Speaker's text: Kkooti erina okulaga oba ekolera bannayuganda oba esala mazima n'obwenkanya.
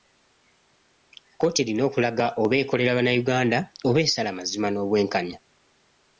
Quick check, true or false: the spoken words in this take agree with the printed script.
true